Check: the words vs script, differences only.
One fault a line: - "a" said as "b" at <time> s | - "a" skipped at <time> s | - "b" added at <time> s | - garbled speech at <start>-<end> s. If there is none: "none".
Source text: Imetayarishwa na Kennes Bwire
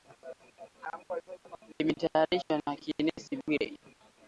none